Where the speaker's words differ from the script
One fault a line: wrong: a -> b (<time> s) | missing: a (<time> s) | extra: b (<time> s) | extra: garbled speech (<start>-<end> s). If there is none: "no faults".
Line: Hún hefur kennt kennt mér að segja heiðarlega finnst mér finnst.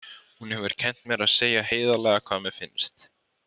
missing: kennt (1.0 s)
wrong: finnst -> hvað (2.3 s)